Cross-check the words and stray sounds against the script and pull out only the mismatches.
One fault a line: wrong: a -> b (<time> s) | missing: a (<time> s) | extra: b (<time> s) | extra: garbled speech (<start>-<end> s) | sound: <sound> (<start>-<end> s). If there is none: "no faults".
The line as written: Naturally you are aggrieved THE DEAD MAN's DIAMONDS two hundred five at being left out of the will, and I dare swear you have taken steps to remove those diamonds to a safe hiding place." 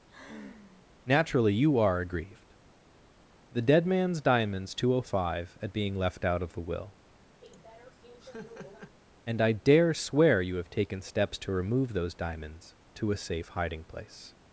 sound: sigh (0.1-0.9 s)
sound: laugh (7.4-9.0 s)